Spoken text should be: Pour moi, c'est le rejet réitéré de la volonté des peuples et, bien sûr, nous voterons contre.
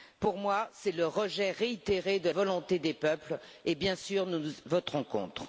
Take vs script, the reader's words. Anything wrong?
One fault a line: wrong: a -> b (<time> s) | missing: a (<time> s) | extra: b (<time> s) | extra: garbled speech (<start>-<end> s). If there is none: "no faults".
missing: la (2.3 s)